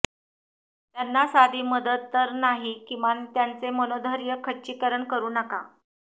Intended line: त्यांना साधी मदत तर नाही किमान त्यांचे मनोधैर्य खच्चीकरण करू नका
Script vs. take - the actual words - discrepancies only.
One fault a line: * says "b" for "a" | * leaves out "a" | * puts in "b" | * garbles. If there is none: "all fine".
all fine